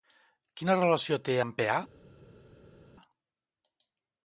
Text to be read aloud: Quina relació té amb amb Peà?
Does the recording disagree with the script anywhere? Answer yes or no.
yes